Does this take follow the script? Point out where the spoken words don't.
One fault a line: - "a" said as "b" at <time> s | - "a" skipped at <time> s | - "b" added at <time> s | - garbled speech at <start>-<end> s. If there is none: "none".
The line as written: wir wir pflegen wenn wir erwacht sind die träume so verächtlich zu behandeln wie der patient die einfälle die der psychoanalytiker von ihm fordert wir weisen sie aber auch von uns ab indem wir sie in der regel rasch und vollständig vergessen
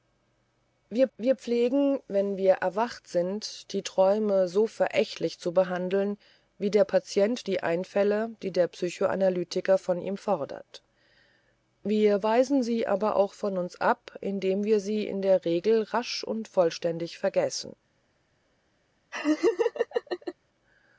none